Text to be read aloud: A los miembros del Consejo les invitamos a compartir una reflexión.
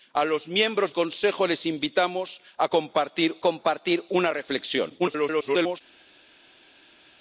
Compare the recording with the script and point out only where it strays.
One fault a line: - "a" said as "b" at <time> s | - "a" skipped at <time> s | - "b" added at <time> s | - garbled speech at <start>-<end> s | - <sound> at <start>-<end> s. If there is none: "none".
- "del" skipped at 0.9 s
- "compartir" added at 3.4 s
- garbled speech at 5.0-5.8 s